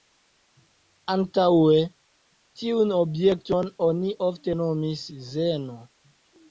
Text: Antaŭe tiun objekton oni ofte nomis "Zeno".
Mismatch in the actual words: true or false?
false